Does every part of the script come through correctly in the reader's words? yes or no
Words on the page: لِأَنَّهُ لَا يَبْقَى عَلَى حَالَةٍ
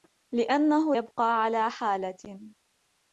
no